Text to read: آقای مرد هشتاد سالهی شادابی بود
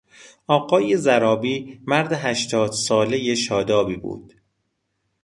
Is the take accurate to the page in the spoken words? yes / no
no